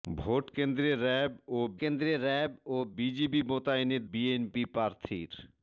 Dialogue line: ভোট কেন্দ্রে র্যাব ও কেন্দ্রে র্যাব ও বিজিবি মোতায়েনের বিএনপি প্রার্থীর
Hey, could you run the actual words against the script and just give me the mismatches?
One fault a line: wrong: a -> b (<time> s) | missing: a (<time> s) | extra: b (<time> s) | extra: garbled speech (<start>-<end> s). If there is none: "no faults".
no faults